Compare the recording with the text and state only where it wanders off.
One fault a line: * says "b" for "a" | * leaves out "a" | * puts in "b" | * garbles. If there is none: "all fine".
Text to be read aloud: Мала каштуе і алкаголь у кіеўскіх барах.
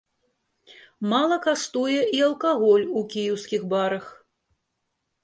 all fine